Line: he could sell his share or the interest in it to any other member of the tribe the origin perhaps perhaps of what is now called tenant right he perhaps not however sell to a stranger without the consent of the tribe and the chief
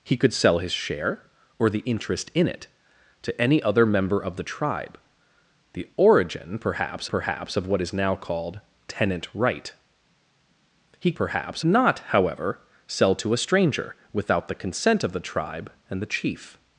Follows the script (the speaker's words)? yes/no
yes